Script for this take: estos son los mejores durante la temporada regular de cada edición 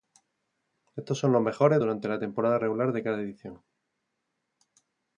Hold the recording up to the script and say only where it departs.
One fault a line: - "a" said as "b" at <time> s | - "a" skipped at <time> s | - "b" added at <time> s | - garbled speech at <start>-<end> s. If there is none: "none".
none